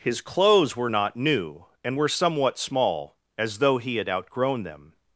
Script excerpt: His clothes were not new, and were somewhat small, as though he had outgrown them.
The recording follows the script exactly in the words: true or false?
true